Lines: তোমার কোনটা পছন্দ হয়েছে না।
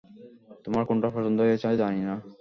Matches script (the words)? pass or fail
fail